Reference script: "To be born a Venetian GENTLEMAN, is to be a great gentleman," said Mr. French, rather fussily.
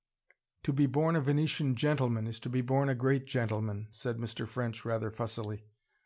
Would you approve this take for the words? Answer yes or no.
no